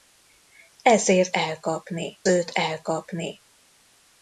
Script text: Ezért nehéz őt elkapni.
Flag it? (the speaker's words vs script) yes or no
yes